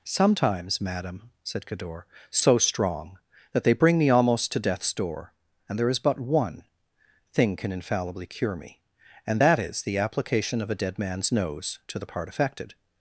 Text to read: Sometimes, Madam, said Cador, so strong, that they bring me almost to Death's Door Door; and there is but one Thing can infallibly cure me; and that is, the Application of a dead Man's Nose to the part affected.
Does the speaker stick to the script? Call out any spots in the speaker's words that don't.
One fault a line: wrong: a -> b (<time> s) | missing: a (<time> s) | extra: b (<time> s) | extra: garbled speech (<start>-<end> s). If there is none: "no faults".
missing: Door (5.3 s)